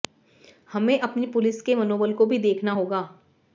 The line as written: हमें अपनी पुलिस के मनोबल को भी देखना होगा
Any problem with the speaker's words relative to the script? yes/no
no